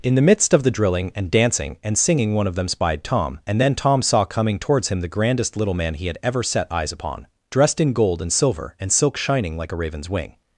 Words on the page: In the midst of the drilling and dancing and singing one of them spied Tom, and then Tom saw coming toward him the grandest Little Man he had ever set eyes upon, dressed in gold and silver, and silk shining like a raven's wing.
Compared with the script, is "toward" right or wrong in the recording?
wrong